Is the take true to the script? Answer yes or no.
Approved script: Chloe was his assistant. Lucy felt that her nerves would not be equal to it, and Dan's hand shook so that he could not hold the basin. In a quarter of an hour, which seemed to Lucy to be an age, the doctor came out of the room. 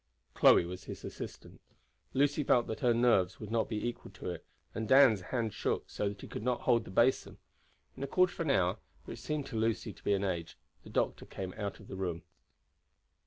yes